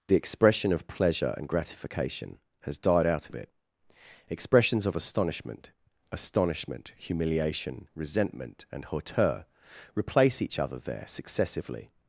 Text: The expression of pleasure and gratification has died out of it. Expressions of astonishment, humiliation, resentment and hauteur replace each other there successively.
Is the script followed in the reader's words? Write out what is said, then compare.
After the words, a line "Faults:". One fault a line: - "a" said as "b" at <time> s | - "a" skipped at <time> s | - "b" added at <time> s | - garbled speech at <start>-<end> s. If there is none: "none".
The expression of pleasure and gratification has died out of it. Expressions of astonishment astonishment, humiliation, resentment and hauteur replace each other there successively.
Faults:
- "astonishment" added at 6.1 s